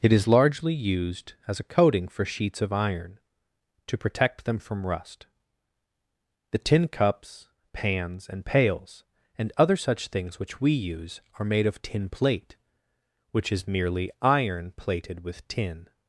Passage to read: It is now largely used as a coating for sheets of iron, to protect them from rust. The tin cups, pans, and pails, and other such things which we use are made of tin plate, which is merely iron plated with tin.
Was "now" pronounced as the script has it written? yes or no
no